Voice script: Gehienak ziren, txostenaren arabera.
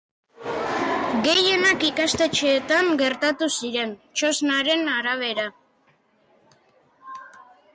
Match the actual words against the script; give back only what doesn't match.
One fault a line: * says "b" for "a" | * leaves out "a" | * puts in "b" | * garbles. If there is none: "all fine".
* puts in "ikastetxeetan gertatu"